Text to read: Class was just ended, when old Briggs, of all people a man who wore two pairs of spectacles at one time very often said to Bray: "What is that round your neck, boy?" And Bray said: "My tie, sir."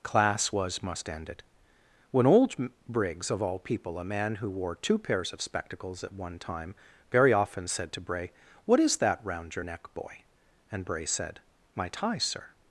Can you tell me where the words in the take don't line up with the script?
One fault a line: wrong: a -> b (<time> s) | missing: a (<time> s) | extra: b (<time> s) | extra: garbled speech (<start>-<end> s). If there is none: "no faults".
wrong: just -> must (0.8 s)